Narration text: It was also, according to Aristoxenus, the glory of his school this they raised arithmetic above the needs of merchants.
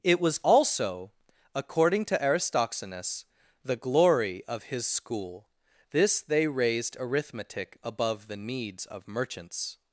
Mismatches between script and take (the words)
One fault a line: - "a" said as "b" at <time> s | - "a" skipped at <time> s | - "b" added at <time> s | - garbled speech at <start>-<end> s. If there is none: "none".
none